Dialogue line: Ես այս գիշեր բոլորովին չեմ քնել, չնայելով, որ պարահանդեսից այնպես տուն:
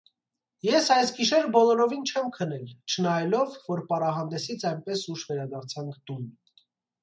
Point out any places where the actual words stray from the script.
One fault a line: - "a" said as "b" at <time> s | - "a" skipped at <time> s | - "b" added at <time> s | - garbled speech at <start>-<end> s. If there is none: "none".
- "ուշ վերադարձանք" added at 5.2 s